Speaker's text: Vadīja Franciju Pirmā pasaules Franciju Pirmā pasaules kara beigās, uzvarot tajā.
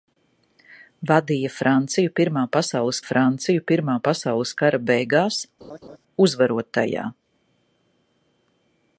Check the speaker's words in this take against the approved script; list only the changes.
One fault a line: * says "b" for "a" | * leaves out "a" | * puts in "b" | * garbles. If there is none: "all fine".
all fine